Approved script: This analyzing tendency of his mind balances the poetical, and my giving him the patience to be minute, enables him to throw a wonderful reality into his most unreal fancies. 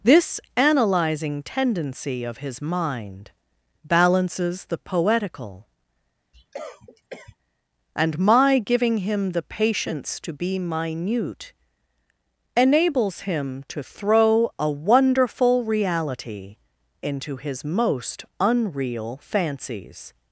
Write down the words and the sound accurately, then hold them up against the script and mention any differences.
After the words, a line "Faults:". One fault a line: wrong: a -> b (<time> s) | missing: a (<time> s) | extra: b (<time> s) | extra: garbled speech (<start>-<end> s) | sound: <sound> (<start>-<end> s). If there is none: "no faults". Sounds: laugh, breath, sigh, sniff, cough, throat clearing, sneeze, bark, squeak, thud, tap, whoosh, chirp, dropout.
This analyzing tendency of his mind balances the poetical, and my giving him the patience to be minute, enables him to throw a wonderful reality into his most unreal fancies.
Faults:
sound: cough (6.3-7.4 s)